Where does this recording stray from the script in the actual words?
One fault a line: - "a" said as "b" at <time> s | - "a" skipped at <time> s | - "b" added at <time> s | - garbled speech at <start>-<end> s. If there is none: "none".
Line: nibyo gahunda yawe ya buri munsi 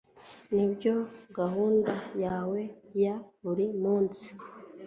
none